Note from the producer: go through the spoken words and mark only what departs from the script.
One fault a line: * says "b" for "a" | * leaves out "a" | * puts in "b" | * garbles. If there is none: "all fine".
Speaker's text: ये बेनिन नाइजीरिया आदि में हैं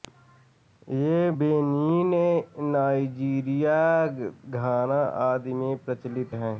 * puts in "घाना"
* puts in "प्रचलित"